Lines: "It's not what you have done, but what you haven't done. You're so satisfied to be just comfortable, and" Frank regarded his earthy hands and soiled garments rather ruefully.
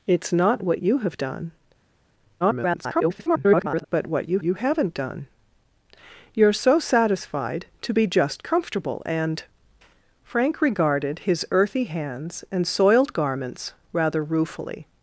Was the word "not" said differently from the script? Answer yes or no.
no